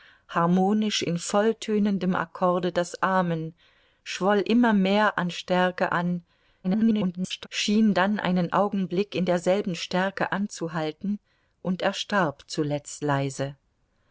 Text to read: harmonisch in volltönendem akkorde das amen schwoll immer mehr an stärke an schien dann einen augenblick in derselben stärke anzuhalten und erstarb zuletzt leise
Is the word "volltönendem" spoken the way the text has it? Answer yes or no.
yes